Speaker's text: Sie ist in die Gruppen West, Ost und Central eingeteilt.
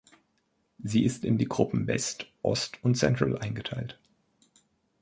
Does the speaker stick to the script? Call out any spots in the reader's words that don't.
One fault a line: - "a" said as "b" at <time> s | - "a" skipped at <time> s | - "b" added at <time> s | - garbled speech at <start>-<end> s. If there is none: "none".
none